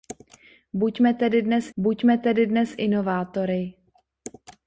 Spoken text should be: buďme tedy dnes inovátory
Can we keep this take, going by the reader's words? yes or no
no